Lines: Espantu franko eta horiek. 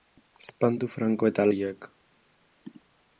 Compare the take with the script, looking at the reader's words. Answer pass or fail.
pass